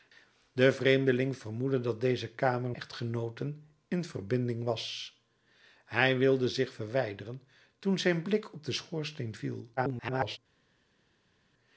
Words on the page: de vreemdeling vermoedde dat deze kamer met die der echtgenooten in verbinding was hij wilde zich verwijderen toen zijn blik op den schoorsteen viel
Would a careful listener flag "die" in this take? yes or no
yes